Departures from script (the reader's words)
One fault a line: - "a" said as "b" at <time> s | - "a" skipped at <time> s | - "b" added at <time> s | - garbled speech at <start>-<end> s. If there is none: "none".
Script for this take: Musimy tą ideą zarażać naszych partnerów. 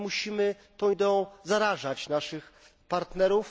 none